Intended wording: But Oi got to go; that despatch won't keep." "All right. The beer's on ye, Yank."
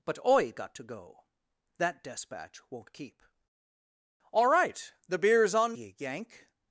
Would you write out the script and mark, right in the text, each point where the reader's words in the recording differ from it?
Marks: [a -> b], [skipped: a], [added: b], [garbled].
But Oi got to go; that despatch won't keep." "All right. The beer's on ye, Yank."